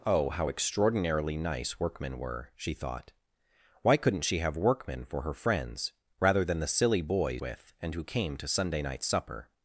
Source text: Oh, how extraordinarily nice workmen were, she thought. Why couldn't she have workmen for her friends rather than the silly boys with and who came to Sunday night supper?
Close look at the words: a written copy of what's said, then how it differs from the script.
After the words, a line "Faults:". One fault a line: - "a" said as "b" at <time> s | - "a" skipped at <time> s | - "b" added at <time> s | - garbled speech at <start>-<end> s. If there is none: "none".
Oh, how extraordinarily nice workmen were, she thought. Why couldn't she have workmen for her friends rather than the silly boys with and who came to Sunday night supper?
Faults:
none